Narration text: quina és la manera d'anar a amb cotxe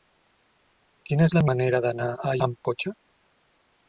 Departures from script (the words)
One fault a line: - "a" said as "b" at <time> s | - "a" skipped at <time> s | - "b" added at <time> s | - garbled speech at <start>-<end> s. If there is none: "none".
none